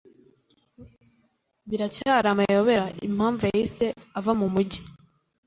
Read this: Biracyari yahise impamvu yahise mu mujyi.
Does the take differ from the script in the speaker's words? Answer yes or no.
yes